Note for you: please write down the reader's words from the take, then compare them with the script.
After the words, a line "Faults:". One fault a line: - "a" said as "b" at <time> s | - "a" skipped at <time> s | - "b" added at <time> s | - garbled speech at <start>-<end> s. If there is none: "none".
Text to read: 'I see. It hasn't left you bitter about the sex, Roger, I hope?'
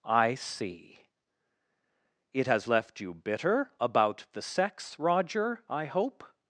'I see. It has left you bitter about the sex, Roger, I hope?'
Faults:
- "hasn't" said as "has" at 2.5 s